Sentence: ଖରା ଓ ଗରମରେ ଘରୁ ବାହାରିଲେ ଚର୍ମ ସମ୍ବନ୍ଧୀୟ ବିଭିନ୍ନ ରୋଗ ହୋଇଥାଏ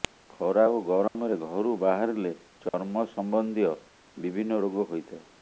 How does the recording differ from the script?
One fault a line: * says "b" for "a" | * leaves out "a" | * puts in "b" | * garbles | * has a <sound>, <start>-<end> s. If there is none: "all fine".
* has a dropout, 1.1-1.2 s
* has a dropout, 2.7-2.7 s